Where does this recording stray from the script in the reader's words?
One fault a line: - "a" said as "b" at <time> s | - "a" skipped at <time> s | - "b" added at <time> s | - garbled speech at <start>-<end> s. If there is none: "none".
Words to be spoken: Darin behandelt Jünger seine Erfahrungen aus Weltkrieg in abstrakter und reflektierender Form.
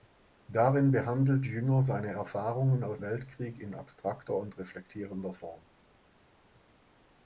none